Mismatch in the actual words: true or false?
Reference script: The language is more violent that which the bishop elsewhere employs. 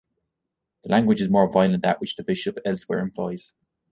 false